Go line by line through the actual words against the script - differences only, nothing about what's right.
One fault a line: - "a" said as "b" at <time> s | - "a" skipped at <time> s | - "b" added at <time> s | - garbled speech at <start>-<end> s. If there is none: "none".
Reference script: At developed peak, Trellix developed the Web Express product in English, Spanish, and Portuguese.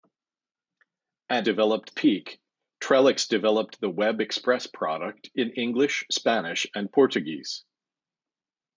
none